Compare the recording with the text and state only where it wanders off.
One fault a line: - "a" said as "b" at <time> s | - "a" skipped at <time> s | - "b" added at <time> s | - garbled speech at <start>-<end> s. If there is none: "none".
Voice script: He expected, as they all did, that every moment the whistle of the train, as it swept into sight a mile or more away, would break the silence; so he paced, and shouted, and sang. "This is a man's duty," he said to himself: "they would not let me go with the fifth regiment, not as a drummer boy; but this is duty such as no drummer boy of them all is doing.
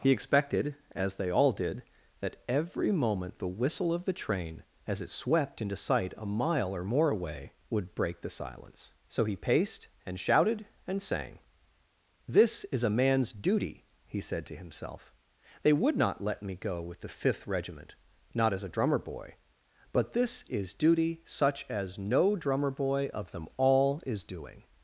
none